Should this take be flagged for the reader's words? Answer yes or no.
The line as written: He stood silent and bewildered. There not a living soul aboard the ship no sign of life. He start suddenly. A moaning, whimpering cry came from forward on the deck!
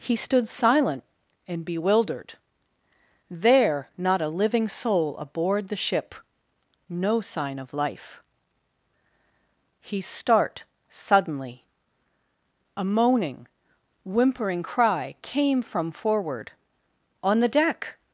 no